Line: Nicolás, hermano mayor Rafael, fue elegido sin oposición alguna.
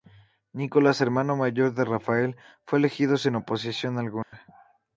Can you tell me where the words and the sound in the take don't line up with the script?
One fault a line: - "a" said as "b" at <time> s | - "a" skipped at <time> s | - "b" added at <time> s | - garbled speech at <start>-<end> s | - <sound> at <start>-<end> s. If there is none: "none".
- "de" added at 1.8 s
- dropout at 4.2-4.3 s